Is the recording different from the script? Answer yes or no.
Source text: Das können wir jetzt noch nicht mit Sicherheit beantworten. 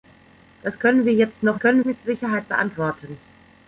yes